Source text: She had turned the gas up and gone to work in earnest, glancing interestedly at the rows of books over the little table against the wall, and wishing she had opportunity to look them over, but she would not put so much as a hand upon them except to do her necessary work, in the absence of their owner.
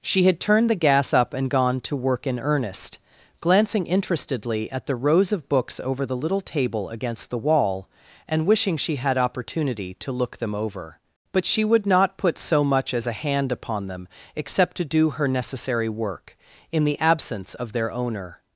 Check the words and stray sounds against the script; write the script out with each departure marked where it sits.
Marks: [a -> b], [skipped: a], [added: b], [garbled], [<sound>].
She had turned the gas up and gone to work in earnest, glancing interestedly at the rows of books over the little table against the wall, and wishing she had opportunity to look them over, but she would not put so much as a hand upon them except to do her necessary work, in the absence of their owner.